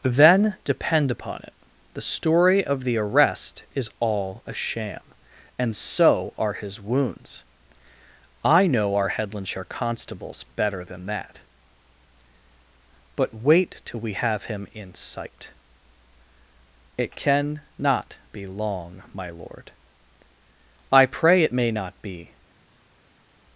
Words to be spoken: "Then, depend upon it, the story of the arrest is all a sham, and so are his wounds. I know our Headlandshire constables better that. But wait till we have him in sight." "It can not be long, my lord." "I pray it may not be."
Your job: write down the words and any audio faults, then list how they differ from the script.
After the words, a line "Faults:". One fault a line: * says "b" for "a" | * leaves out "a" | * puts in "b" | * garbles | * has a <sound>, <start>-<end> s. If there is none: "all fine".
"Then, depend upon it, the story of the arrest is all a sham, and so are his wounds. I know our Headlandshire constables better than that. But wait till we have him in sight." "It can not be long, my lord." "I pray it may not be."
Faults:
* puts in "than"